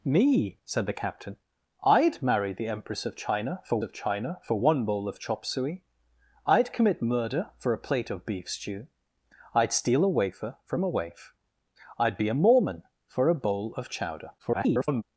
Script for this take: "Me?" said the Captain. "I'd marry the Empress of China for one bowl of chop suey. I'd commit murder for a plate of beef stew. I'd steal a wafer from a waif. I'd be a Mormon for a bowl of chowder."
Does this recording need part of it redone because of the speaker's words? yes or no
yes